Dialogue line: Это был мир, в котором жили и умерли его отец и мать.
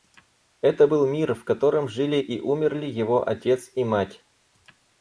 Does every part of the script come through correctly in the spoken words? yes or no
yes